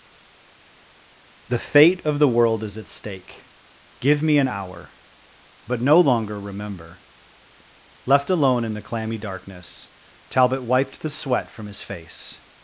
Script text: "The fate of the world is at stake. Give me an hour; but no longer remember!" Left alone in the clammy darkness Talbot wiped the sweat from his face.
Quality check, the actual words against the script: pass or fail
pass